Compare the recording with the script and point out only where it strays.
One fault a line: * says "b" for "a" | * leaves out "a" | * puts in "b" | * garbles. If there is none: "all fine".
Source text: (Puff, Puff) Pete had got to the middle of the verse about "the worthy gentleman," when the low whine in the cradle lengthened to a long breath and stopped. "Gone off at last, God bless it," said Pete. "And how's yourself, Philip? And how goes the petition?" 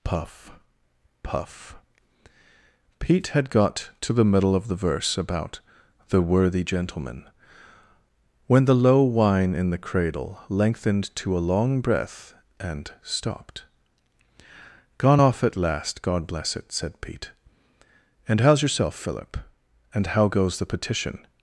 all fine